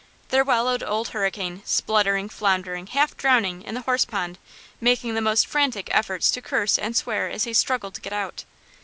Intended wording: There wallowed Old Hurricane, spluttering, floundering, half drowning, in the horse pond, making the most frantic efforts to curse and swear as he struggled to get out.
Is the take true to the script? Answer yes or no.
yes